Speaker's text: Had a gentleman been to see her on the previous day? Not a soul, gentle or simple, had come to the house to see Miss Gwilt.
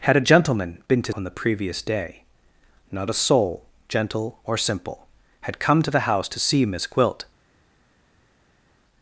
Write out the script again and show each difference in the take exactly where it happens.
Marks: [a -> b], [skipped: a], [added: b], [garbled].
Had a gentleman been to [skipped: see her] on the previous day? Not a soul, gentle or simple, had come to the house to see Miss Gwilt.